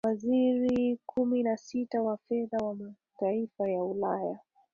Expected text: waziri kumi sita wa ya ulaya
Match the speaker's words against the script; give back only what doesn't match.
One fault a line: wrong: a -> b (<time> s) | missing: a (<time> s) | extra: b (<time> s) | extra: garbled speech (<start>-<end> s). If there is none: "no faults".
extra: na (1.4 s)
extra: fedha wa mataifa (2.2 s)